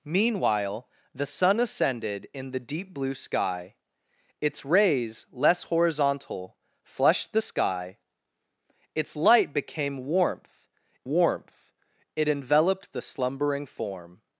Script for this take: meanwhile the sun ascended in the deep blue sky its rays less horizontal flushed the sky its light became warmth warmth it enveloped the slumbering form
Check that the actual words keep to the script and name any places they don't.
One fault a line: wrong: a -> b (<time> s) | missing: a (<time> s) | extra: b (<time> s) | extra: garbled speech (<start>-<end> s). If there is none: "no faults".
no faults